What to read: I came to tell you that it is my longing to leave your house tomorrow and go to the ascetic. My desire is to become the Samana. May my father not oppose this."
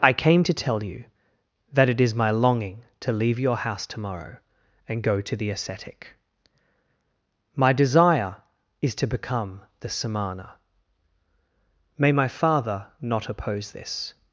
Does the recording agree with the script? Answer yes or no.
yes